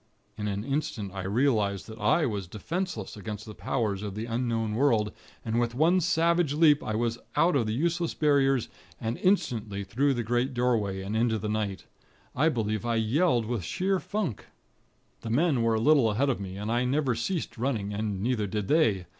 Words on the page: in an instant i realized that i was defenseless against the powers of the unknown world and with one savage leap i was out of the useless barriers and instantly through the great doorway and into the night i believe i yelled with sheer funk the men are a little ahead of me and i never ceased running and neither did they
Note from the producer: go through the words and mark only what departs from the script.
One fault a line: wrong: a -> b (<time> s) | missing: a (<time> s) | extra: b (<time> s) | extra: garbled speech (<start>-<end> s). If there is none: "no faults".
wrong: are -> were (15.6 s)